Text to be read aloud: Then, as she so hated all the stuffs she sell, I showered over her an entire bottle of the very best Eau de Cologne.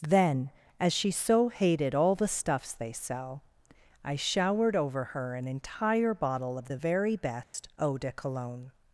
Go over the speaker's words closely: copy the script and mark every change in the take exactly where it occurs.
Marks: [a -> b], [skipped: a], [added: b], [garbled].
Then, as she so hated all the stuffs [she -> they] sell, I showered over her an entire bottle of the very best Eau de Cologne.